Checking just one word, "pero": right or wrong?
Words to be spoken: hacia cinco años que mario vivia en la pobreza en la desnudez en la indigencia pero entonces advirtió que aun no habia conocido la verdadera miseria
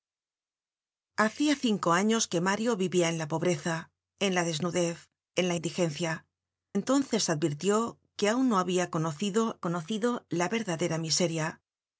wrong